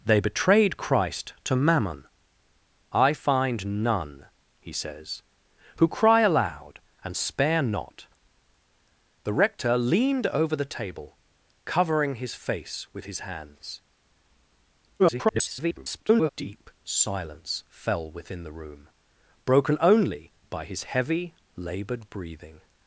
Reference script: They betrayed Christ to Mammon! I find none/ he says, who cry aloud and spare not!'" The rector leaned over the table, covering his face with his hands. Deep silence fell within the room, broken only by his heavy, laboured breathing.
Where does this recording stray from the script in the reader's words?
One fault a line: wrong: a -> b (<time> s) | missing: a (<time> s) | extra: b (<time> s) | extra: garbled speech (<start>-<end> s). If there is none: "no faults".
extra: garbled speech (15.0-16.3 s)